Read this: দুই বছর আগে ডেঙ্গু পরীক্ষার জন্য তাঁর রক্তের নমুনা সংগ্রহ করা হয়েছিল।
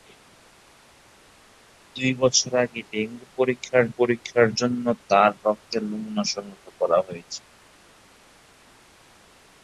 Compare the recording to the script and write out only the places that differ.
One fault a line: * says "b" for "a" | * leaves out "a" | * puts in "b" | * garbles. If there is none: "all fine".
* puts in "পরীক্ষার"